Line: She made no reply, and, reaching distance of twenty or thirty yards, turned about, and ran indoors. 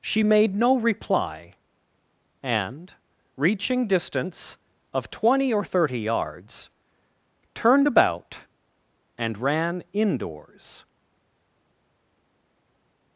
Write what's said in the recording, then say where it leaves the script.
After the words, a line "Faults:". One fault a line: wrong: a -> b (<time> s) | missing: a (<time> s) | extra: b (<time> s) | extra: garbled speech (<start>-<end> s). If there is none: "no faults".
She made no reply, and, reaching distance of twenty or thirty yards, turned about, and ran indoors.
Faults:
no faults